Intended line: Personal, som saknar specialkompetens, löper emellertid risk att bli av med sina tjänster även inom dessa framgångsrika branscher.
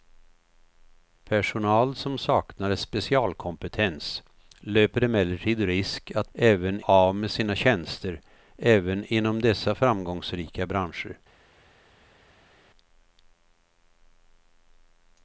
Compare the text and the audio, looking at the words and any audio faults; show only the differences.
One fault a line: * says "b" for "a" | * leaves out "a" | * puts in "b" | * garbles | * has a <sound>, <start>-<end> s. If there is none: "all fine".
* says "även" for "bli"